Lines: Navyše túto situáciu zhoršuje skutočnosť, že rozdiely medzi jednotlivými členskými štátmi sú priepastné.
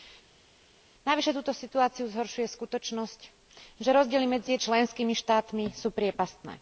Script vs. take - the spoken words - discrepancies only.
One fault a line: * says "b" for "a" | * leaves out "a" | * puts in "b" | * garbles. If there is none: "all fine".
* leaves out "jednotlivými"